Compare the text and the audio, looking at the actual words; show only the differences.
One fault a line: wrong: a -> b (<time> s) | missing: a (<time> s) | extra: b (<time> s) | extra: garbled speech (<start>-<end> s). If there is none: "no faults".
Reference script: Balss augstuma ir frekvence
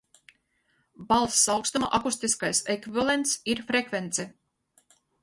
extra: akustiskais ekvivalents (2.0 s)